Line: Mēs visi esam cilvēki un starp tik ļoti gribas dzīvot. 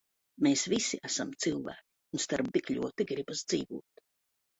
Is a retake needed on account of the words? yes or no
no